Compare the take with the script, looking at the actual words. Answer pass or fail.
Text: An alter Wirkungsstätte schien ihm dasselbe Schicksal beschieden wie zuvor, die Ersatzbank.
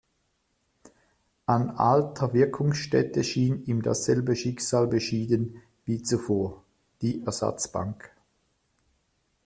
pass